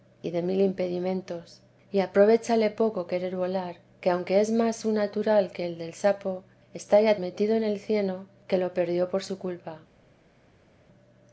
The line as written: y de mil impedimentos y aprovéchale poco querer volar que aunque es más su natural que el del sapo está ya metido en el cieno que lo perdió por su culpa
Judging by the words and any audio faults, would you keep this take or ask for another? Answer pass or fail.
pass